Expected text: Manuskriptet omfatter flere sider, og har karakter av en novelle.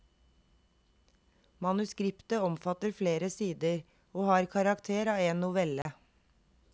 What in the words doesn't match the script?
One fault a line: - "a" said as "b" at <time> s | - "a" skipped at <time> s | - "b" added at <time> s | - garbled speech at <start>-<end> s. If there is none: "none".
none